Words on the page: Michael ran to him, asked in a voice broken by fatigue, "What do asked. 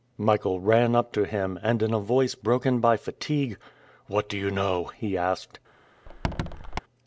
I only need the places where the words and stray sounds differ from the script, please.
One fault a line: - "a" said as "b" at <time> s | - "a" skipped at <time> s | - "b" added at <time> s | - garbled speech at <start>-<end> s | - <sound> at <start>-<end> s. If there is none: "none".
- "up" added at 0.9 s
- "asked" said as "and" at 1.6 s
- "you know he" added at 4.4 s
- squeak at 6.1-6.8 s